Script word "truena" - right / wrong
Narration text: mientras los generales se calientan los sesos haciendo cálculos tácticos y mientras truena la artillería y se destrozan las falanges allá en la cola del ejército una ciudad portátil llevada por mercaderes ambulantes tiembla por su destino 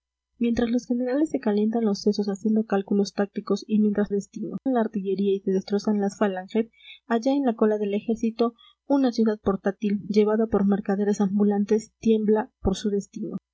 wrong